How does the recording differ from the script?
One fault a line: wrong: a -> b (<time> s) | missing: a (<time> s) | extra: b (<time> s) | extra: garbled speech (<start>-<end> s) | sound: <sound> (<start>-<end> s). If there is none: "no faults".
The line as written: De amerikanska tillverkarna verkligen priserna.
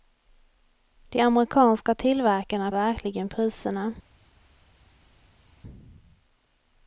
no faults